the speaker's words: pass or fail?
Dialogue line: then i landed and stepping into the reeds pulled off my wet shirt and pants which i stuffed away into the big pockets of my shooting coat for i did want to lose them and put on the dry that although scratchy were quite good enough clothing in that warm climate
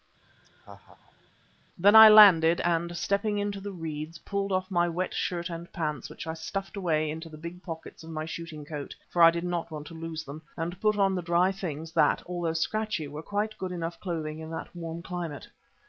fail